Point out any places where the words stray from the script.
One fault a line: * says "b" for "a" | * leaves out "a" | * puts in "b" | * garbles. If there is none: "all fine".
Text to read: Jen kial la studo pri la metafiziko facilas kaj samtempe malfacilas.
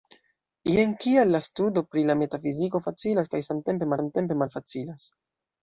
* puts in "samtempe"